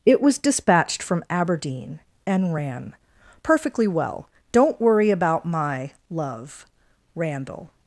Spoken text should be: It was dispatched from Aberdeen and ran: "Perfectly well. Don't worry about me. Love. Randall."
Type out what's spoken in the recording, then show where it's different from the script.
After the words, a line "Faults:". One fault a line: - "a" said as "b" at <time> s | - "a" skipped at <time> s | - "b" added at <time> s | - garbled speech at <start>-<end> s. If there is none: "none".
It was dispatched from Aberdeen and ran: "Perfectly well. Don't worry about my. Love. Randall."
Faults:
- "me" said as "my" at 5.4 s